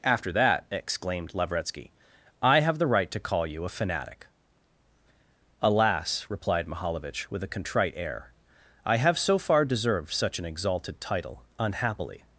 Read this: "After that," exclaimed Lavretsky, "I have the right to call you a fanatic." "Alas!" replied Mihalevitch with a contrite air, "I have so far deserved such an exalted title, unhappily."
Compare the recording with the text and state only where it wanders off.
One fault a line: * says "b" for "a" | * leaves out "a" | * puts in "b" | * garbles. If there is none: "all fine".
all fine